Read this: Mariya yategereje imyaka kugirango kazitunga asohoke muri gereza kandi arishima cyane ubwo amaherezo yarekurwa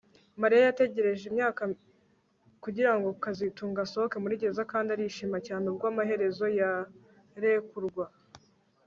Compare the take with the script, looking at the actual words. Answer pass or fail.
pass